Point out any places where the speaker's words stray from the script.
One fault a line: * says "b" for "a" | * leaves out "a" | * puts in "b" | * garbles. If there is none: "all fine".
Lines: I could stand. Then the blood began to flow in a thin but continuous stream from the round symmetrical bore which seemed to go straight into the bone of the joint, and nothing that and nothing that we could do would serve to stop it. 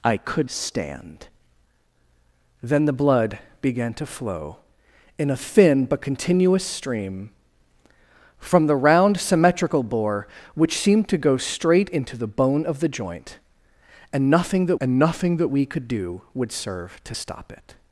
all fine